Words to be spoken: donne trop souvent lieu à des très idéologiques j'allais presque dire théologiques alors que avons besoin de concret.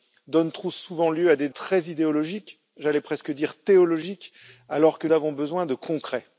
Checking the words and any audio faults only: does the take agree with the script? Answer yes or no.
yes